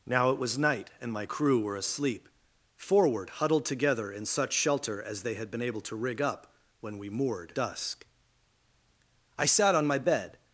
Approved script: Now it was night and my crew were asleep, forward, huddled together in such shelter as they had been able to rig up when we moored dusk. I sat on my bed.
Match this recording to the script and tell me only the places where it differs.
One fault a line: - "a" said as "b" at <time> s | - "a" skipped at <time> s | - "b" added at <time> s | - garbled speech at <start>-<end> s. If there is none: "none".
none